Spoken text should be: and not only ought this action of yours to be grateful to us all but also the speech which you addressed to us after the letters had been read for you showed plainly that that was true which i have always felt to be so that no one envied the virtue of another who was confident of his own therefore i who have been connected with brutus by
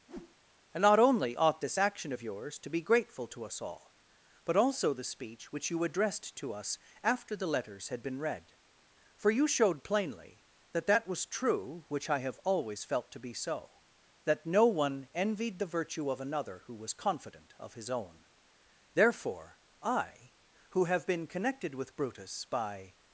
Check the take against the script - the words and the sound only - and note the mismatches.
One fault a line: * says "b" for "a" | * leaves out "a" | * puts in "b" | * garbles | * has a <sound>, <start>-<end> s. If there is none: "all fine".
* has a whoosh, 0.1-0.4 s